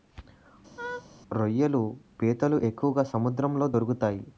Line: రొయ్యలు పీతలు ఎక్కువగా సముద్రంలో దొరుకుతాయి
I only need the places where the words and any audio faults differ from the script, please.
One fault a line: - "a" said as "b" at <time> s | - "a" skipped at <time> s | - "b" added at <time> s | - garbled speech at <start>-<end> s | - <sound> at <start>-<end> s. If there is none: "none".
- laugh at 0.8-1.1 s